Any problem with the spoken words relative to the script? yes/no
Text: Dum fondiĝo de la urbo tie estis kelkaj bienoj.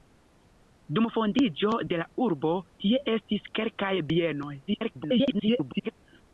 yes